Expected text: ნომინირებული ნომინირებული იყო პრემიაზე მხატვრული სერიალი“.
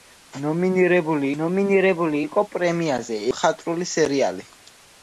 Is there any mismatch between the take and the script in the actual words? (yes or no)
no